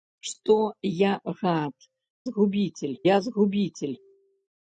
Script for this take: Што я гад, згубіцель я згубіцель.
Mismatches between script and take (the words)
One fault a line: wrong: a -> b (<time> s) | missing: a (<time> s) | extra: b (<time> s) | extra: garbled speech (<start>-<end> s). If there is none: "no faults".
no faults